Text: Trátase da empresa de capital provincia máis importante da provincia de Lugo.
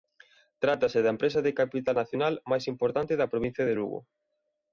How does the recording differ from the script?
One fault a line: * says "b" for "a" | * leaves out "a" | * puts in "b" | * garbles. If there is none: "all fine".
* says "nacional" for "provincia"